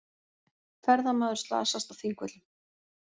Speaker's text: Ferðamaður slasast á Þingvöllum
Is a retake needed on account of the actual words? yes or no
no